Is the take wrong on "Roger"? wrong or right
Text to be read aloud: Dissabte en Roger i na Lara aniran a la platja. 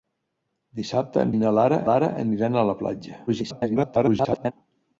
wrong